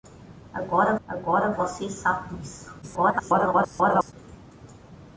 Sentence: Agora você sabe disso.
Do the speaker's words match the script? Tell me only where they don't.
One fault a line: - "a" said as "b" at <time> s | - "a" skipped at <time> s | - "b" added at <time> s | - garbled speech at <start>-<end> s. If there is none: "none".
- "agora" added at 1.1 s
- garbled speech at 2.8-4.1 s